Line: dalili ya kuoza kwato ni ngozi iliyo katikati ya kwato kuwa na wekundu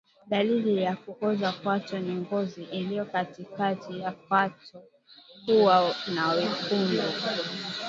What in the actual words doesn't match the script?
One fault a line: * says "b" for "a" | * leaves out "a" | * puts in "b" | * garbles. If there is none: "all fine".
all fine